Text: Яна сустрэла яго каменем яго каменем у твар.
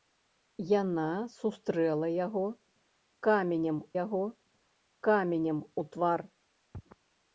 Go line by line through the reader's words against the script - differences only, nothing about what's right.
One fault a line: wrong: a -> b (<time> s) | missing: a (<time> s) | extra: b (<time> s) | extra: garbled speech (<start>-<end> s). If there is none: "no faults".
no faults